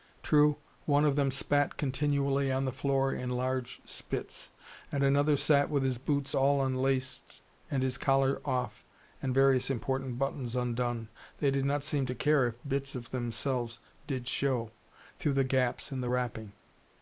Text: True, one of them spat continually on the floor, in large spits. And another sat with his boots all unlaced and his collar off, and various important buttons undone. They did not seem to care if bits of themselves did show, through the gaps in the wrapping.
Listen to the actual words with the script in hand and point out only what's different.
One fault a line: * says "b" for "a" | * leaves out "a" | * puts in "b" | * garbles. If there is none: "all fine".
all fine